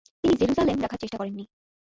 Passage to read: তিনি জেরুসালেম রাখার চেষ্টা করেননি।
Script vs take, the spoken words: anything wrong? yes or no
no